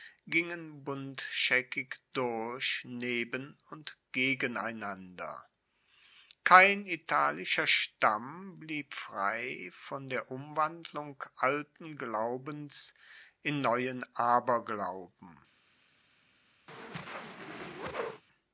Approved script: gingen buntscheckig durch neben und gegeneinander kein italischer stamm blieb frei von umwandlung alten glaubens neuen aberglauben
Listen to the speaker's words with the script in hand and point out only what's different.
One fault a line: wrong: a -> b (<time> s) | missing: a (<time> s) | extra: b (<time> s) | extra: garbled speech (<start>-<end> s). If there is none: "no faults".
extra: der (10.1 s)
extra: in (13.4 s)